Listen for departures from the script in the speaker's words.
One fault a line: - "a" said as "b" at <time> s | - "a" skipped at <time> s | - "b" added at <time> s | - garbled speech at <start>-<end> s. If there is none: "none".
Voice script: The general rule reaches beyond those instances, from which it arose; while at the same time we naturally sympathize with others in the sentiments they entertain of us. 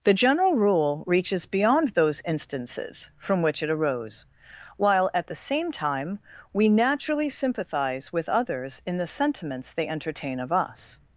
none